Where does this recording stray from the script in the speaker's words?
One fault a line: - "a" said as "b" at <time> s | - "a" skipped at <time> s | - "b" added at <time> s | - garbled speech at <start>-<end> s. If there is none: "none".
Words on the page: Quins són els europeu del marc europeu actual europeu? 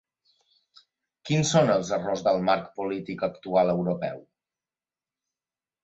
- "europeu" said as "errors" at 2.0 s
- "europeu" said as "polític" at 2.8 s